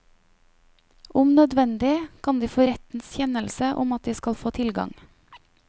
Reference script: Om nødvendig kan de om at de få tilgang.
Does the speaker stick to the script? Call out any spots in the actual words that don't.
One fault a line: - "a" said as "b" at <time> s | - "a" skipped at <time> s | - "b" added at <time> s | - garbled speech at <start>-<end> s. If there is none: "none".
- "få rettens kjennelse" added at 2.5 s
- "skal" added at 4.1 s